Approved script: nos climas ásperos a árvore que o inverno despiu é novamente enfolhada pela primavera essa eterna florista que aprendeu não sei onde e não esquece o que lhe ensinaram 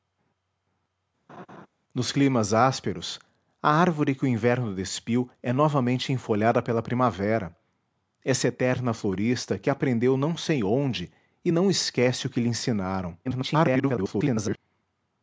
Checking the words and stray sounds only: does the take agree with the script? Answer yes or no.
no